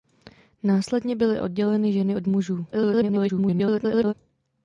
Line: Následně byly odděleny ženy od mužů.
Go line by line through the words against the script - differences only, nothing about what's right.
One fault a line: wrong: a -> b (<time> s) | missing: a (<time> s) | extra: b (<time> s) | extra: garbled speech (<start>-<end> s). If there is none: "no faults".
extra: garbled speech (2.7-4.1 s)